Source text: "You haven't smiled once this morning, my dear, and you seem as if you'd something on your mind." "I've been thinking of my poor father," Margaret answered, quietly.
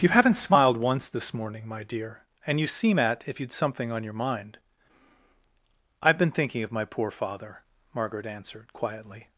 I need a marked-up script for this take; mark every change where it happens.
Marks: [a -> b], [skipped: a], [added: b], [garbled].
"You haven't smiled once this morning, my dear, and you seem [as -> at] if you'd something on your mind." "I've been thinking of my poor father," Margaret answered, quietly.